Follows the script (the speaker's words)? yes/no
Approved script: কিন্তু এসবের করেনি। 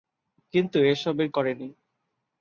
yes